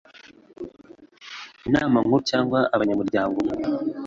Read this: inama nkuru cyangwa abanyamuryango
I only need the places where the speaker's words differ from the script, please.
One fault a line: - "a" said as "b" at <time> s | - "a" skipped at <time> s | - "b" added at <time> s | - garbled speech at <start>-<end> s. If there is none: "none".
none